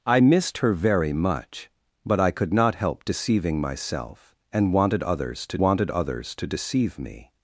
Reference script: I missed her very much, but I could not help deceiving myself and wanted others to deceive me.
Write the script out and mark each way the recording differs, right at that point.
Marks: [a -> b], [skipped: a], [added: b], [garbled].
I missed her very much, but I could not help deceiving myself and wanted others to [added: wanted others to] deceive me.